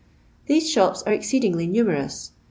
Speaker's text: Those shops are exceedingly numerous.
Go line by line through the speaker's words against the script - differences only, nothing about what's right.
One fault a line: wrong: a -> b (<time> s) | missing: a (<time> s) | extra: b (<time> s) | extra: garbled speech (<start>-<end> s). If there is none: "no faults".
wrong: Those -> These (0.5 s)